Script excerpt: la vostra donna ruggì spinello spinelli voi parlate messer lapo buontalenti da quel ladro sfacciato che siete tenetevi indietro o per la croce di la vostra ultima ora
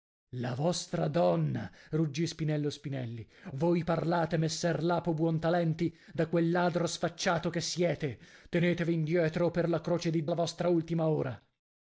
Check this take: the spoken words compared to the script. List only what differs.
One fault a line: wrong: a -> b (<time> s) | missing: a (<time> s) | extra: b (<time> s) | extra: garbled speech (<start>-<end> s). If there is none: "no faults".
no faults